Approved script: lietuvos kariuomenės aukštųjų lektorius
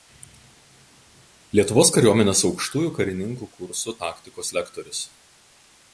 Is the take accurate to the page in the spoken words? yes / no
no